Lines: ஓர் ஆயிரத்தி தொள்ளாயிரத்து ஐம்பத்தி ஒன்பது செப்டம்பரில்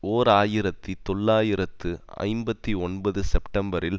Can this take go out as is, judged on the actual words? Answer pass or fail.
pass